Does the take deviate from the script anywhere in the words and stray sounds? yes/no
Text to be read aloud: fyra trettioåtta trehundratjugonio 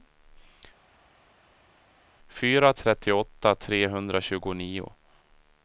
no